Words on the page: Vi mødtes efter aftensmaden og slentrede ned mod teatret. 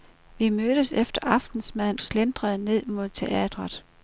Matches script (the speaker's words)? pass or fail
fail